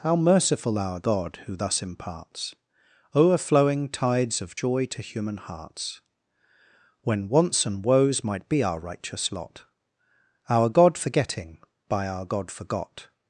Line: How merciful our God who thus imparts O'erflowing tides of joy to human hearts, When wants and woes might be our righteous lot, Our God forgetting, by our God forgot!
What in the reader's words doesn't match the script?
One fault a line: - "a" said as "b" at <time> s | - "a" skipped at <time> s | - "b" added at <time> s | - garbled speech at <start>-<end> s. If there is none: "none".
none